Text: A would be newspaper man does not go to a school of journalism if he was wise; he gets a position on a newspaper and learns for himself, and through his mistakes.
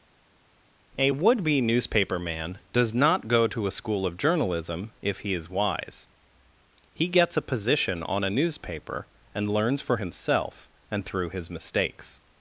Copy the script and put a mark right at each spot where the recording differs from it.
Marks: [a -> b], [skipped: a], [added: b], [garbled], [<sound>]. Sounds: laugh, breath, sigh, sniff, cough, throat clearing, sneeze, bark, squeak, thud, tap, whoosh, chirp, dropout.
A would be newspaper man does not go to a school of journalism if he [was -> is] wise; he gets a position on a newspaper and learns for himself, and through his mistakes.